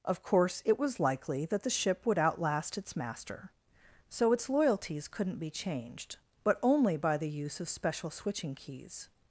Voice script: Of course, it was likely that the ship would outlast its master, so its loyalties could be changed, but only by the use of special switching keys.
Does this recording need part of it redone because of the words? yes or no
yes